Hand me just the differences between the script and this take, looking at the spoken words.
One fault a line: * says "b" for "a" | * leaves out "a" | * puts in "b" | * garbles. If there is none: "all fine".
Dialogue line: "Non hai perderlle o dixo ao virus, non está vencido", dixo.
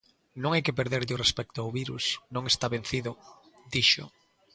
* puts in "que"
* says "respecto" for "dixo"